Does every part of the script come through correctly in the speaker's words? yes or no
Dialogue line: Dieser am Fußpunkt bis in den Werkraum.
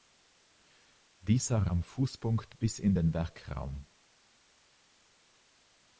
yes